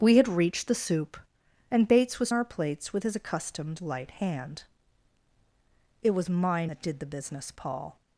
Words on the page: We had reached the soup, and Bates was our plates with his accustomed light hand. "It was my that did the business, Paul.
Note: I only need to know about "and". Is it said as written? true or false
true